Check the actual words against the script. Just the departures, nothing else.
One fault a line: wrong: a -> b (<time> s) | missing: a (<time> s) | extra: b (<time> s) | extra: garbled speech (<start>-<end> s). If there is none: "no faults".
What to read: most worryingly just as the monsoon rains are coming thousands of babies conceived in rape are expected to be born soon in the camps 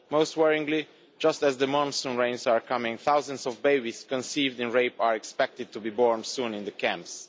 no faults